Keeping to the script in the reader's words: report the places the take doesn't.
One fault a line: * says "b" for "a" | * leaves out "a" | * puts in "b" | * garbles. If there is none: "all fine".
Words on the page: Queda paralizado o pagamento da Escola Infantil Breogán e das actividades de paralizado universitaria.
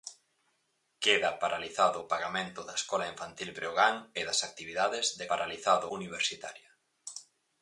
all fine